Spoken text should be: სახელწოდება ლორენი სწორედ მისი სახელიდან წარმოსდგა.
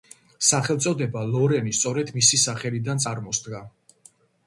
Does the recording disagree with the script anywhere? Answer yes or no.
no